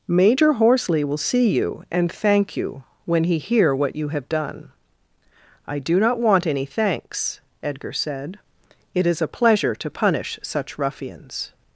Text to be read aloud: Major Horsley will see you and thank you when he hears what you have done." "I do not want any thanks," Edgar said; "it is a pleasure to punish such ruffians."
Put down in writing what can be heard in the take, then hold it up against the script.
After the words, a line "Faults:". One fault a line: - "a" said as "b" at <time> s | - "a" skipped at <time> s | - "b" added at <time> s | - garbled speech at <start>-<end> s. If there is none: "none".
Major Horsley will see you and thank you when he hear what you have done." "I do not want any thanks," Edgar said; "it is a pleasure to punish such ruffians."
Faults:
- "hears" said as "hear" at 3.4 s